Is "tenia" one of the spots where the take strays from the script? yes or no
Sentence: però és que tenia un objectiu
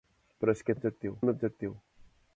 yes